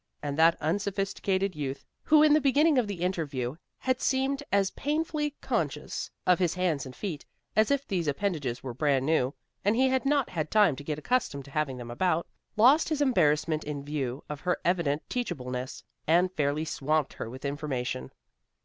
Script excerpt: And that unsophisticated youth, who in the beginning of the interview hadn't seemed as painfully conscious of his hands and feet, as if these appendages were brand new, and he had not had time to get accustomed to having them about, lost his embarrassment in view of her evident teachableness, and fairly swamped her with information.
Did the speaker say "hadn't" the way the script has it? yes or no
no